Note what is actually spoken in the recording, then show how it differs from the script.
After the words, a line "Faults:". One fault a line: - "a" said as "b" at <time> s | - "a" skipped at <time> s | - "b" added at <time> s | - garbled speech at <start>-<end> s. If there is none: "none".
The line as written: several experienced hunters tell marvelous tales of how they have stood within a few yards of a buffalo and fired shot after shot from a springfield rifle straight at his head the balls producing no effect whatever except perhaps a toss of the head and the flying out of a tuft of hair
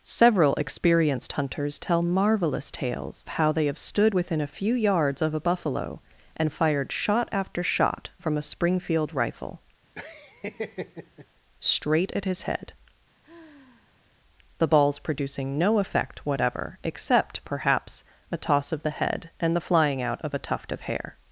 several experienced hunters tell marvelous tales how they have stood within a few yards of a buffalo and fired shot after shot from a springfield rifle straight at his head the balls producing no effect whatever except perhaps a toss of the head and the flying out of a tuft of hair
Faults:
- "of" skipped at 3.2 s